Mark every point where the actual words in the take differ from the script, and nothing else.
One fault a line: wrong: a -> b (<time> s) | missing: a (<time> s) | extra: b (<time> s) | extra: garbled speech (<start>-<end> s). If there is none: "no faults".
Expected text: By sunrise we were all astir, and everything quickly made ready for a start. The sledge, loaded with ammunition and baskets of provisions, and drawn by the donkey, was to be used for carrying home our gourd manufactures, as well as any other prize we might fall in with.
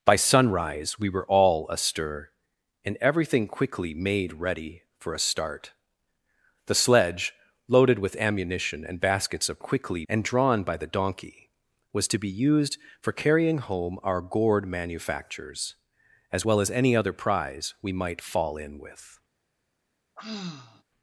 wrong: provisions -> quickly (9.6 s)